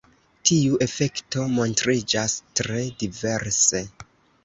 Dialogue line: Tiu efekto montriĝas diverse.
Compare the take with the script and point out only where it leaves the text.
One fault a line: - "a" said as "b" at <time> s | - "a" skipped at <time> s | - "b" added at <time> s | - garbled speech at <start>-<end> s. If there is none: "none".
- "tre" added at 2.6 s